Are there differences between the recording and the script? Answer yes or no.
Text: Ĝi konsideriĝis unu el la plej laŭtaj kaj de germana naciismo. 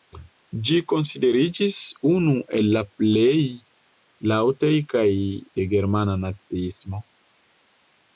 no